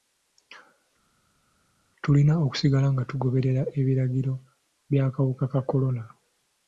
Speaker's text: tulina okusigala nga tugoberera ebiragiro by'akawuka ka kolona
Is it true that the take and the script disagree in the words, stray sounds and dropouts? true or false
false